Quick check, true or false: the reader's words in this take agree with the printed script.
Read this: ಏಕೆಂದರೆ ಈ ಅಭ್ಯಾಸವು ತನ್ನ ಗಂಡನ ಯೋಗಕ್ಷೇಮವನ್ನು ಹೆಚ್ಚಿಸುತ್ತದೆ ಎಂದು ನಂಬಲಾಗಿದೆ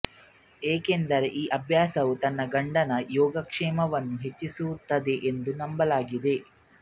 true